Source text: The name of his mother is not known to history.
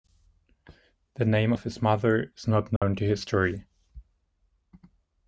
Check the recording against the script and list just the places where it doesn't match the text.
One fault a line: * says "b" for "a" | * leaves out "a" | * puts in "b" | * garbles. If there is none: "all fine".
all fine